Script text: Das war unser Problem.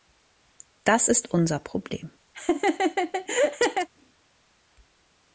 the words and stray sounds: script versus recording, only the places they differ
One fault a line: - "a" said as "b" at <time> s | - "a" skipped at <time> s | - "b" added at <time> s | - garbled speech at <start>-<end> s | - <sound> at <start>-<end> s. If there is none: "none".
- "war" said as "ist" at 1.1 s
- laugh at 2.3-3.9 s